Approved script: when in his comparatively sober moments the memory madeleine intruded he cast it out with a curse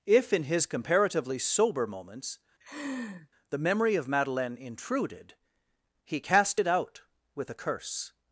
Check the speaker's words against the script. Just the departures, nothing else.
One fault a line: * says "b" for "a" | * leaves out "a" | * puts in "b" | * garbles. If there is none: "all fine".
* says "if" for "when"
* puts in "of"